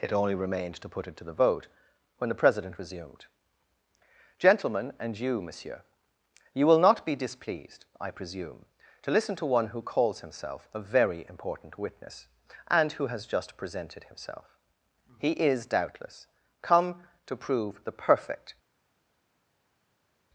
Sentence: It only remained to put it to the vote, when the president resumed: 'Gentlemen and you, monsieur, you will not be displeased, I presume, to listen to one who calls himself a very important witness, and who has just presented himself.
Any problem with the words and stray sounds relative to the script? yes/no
yes